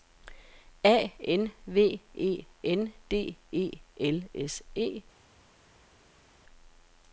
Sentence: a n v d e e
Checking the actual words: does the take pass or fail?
fail